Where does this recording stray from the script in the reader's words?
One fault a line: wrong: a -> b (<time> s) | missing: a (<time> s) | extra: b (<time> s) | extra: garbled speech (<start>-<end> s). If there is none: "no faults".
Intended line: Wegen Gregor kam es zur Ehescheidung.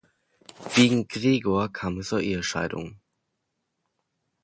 no faults